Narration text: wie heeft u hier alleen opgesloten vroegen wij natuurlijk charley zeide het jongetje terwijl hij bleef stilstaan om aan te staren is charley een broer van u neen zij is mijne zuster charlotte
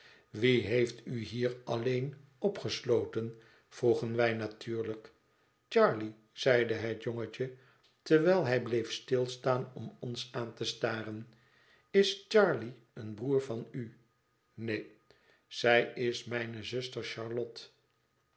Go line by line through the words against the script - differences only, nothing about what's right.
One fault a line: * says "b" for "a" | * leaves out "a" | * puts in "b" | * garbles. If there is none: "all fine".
* puts in "ons"